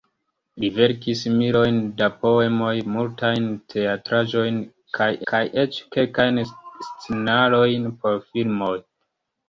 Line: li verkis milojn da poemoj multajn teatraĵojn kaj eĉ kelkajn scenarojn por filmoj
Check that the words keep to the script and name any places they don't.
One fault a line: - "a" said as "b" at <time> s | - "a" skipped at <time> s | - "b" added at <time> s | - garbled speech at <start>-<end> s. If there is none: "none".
- "kaj" added at 5.3 s